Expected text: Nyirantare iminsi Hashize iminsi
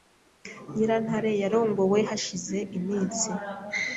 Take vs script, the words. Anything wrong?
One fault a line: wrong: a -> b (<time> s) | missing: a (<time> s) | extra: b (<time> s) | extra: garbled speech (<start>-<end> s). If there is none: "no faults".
wrong: iminsi -> yarongowe (1.4 s)